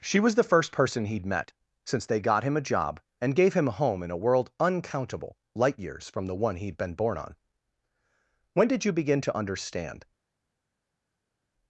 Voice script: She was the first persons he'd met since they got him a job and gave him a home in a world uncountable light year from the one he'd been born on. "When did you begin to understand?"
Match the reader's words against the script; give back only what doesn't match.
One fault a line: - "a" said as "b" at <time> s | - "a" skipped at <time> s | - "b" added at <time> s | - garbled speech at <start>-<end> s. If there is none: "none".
- "persons" said as "person" at 0.7 s
- "year" said as "years" at 5.8 s